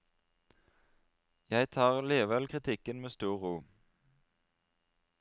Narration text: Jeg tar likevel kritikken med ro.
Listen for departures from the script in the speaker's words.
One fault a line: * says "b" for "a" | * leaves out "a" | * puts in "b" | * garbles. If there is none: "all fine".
* puts in "stor"